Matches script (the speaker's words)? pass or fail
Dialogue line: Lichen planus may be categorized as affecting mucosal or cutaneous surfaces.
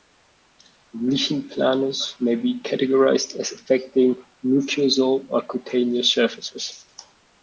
pass